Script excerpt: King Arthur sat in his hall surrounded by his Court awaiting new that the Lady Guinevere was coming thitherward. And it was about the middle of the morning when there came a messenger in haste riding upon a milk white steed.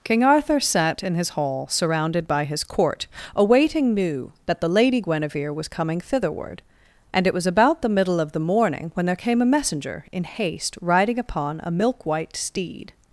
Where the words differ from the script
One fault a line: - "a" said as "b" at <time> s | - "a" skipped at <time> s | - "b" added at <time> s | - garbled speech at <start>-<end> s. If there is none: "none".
none